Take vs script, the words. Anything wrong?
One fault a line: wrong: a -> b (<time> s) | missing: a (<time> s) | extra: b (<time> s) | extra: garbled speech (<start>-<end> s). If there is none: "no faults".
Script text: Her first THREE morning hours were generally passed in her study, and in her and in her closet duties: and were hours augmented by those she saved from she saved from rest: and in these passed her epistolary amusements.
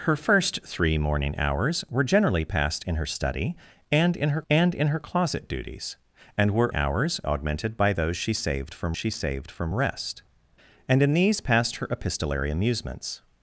no faults